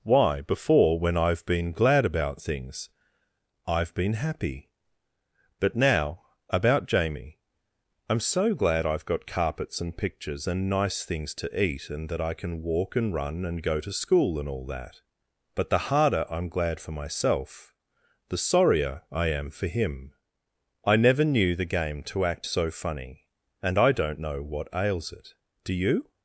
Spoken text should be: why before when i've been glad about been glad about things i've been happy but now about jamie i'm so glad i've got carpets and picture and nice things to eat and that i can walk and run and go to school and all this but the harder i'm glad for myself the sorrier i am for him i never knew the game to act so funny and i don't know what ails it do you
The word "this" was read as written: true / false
false